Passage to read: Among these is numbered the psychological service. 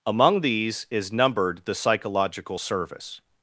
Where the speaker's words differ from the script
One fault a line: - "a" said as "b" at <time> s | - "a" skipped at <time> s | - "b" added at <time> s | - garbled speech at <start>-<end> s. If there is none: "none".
none